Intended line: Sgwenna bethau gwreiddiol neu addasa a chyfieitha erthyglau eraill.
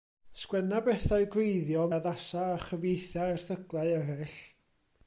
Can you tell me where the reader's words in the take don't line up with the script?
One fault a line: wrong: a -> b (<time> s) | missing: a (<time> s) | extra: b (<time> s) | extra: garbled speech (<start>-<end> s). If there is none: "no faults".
missing: neu (1.9 s)